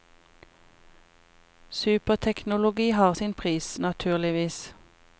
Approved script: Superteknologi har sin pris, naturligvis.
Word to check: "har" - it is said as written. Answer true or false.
true